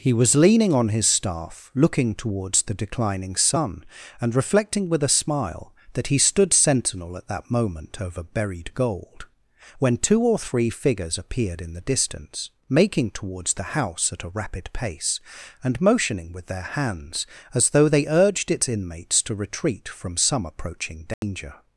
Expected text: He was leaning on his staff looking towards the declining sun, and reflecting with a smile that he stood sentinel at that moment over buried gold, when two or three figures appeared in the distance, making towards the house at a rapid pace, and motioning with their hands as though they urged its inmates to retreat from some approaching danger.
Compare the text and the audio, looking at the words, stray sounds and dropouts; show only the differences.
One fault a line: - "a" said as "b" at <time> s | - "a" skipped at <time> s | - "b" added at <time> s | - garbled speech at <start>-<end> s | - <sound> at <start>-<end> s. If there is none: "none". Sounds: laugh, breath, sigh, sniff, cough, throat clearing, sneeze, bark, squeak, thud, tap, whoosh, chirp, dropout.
- dropout at 21.1-21.2 s